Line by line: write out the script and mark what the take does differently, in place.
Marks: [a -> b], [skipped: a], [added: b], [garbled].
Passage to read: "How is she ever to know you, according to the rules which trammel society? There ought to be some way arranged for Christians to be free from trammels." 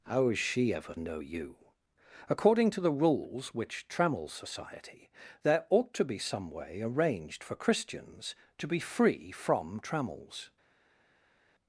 "How is she ever [skipped: to] know you, according to the rules which trammel society? There ought to be some way arranged for Christians to be free from trammels."